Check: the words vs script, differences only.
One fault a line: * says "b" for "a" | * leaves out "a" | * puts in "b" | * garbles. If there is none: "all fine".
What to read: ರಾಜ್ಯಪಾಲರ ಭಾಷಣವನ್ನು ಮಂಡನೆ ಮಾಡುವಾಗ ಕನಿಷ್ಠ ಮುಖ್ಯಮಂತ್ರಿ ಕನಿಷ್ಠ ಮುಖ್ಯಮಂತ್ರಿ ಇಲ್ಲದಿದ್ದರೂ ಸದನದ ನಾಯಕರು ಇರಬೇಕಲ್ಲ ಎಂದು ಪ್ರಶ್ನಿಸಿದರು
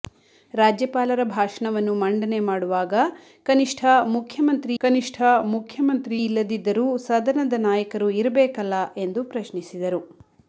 all fine